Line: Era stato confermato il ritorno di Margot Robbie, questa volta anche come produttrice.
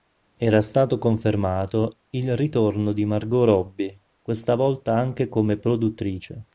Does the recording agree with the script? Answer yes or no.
yes